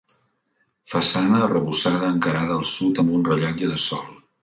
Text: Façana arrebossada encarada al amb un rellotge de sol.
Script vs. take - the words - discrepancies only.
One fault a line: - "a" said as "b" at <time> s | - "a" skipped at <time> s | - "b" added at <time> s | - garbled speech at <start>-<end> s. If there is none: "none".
- "sud" added at 2.7 s